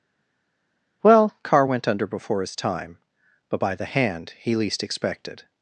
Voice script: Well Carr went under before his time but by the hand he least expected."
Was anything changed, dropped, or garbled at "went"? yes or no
no